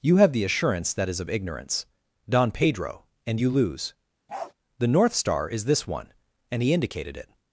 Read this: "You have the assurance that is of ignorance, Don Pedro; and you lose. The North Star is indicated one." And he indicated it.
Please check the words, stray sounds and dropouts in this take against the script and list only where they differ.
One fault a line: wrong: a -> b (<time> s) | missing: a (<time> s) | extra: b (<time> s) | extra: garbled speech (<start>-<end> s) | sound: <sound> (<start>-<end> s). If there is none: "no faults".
sound: bark (4.3-4.5 s)
wrong: indicated -> this (5.6 s)